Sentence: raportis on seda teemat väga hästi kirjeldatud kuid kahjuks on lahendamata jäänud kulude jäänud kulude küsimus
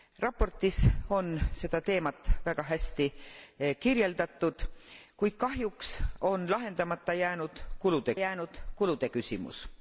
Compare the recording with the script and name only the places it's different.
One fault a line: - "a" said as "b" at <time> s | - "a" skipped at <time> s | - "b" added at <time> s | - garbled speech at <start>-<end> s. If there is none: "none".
none